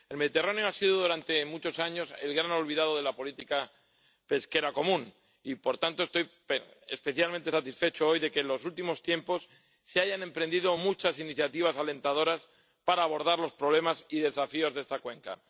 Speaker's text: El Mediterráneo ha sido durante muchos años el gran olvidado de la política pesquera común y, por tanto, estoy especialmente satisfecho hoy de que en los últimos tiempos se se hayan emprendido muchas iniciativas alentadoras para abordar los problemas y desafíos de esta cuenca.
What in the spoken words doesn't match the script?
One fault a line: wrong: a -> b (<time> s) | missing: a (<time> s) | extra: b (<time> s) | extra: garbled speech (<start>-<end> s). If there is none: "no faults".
missing: se (10.0 s)